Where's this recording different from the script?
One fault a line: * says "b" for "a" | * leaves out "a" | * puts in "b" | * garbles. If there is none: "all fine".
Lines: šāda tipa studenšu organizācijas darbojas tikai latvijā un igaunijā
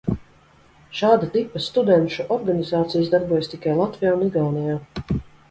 all fine